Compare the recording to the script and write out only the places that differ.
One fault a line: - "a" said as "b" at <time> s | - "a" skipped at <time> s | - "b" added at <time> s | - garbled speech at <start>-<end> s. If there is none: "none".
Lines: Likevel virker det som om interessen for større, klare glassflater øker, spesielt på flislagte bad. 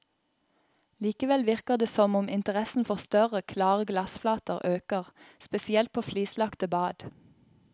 none